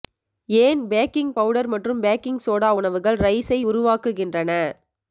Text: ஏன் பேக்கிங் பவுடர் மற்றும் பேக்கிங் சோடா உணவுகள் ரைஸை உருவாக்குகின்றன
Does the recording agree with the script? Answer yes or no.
yes